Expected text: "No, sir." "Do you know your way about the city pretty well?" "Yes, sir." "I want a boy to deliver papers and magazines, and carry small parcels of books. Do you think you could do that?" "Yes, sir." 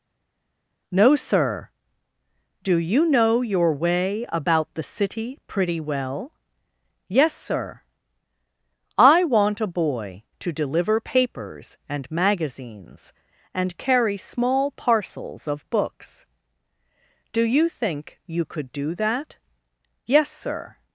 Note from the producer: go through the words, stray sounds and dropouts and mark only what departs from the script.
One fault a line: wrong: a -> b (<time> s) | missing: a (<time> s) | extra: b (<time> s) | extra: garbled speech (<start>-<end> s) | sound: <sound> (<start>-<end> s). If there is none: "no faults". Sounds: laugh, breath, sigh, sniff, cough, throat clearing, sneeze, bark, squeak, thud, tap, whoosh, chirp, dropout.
no faults